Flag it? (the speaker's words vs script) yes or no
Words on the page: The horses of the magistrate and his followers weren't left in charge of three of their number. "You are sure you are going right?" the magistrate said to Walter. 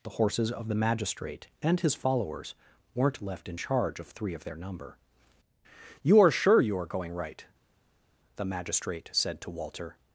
no